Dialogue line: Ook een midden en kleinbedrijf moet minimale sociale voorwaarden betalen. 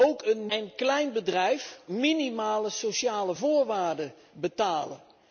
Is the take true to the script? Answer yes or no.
no